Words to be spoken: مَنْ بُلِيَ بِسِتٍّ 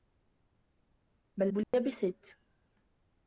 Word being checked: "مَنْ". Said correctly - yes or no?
yes